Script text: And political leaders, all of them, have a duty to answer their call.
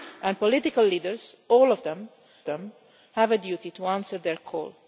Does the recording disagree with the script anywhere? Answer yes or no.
yes